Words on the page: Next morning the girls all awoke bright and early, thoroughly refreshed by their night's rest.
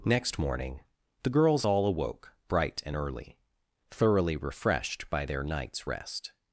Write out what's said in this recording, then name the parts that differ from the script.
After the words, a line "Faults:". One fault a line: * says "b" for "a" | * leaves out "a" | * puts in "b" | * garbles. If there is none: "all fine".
Next morning the girls all awoke bright and early, thoroughly refreshed by their night's rest.
Faults:
all fine